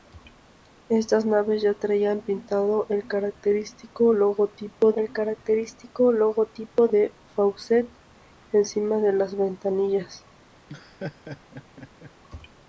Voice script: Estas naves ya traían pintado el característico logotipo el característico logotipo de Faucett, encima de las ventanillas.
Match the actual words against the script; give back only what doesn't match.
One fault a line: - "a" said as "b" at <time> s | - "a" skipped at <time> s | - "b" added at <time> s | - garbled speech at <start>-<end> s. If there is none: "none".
none